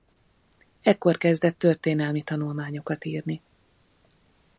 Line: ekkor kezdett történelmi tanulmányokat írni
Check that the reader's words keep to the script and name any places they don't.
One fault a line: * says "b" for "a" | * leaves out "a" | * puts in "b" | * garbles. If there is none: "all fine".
all fine